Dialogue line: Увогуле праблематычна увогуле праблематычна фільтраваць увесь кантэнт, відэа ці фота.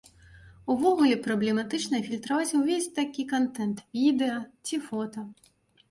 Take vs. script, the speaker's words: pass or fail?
fail